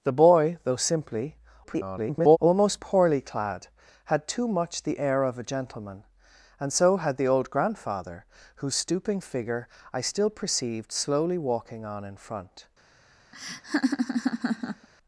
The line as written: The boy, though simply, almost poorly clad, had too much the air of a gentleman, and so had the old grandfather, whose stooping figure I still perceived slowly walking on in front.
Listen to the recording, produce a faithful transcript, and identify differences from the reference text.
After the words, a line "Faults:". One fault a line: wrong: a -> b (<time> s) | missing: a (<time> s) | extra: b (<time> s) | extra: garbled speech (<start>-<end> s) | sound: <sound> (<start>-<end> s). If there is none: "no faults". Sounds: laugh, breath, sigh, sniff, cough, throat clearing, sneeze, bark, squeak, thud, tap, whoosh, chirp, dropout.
The boy, though simply, [garbled] almost poorly clad, had too much the air of a gentleman, and so had the old grandfather, whose stooping figure I still perceived slowly walking on in front.
Faults:
extra: garbled speech (1.6-2.4 s)
sound: laugh (13.3-14.9 s)